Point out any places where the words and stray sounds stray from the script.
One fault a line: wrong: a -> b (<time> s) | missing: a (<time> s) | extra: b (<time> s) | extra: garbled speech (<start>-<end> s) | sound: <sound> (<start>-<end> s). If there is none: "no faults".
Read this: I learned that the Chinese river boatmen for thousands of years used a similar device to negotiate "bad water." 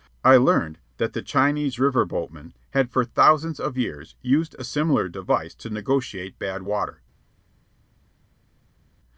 extra: had (2.7 s)